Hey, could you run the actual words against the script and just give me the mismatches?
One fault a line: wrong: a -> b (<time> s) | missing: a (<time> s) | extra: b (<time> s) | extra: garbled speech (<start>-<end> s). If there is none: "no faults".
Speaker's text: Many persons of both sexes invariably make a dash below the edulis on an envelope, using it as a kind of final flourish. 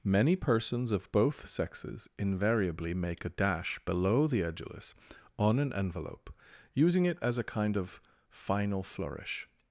no faults